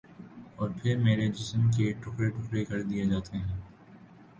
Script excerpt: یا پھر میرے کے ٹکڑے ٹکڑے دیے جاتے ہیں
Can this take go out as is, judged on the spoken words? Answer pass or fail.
fail